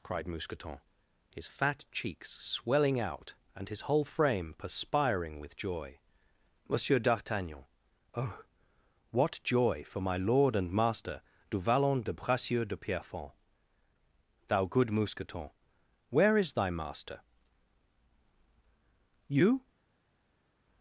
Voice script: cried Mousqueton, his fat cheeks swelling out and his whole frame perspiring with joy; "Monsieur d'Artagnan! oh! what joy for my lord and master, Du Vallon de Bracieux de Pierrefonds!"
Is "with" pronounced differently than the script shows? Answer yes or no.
no